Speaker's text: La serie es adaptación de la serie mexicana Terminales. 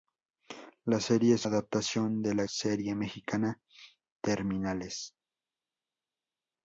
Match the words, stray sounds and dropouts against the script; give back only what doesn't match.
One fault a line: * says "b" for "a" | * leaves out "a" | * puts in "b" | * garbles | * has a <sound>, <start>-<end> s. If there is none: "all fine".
all fine